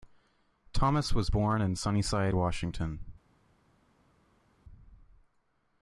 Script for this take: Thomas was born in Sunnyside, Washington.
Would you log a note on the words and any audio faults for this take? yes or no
no